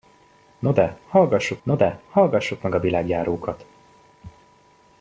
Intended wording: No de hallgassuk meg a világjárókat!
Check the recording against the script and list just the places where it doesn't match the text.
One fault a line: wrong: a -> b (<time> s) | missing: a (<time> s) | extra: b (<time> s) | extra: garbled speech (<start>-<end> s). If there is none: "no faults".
extra: no de hallgassuk (1.6 s)